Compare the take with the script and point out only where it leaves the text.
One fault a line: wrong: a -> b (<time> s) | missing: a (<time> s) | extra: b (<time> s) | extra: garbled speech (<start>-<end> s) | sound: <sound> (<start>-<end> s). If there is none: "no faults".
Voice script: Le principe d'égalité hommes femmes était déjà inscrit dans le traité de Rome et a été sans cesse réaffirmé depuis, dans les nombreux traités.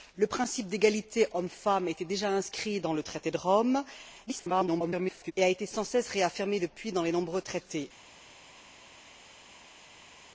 extra: garbled speech (4.3-5.3 s)